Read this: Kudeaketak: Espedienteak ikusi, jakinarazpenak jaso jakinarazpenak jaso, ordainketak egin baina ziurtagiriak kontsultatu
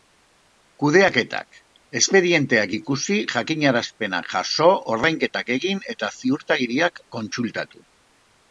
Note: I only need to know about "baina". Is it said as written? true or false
false